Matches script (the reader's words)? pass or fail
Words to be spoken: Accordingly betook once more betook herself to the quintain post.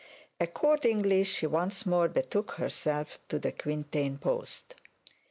fail